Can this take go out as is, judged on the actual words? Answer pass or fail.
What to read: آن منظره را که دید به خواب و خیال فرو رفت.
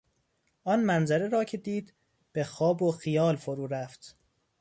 pass